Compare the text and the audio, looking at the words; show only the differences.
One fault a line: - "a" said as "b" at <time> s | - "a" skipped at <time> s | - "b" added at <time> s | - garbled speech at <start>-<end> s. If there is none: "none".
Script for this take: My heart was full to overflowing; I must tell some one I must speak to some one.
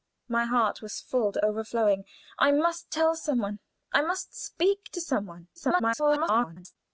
- garbled speech at 5.6-6.8 s